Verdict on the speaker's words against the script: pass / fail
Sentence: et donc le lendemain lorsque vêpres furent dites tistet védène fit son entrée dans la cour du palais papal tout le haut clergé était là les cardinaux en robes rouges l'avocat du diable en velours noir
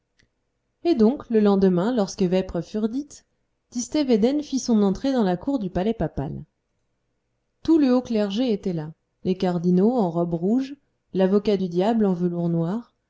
pass